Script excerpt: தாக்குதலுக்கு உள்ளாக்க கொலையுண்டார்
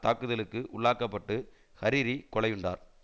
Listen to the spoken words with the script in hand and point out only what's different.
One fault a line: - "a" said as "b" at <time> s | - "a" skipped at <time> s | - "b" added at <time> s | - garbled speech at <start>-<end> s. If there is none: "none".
- "பட்டு ஹரிரி" added at 1.1 s